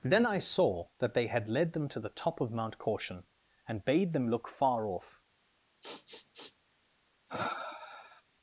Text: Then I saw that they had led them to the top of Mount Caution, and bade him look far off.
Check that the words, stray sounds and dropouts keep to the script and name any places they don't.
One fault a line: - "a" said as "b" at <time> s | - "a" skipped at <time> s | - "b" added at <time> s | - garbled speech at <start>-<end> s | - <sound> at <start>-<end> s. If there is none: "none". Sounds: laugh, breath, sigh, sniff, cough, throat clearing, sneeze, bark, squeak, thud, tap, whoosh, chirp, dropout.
- "him" said as "them" at 4.1 s
- sniff at 5.8-6.5 s
- sniff at 7.3-8.2 s